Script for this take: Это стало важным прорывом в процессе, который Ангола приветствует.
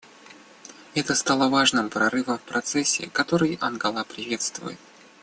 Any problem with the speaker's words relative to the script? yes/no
no